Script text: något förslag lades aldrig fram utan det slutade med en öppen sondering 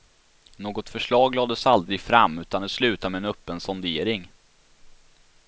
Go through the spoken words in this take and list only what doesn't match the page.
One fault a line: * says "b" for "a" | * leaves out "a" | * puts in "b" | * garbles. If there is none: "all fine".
all fine